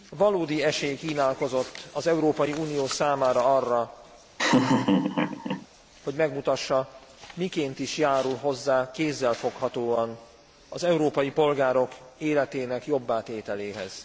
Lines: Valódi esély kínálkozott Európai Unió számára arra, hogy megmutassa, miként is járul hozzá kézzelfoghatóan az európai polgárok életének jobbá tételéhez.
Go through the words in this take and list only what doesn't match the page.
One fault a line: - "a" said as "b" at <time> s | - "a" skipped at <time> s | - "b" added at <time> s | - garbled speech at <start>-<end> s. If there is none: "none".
- "az" added at 1.9 s